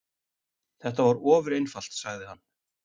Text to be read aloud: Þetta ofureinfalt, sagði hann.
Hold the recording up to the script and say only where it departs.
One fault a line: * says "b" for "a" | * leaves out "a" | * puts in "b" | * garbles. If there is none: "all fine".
* puts in "var"